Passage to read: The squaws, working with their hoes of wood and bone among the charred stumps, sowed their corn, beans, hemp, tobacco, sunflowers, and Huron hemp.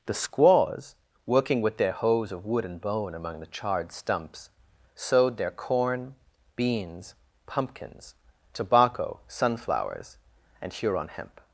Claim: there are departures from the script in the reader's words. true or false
true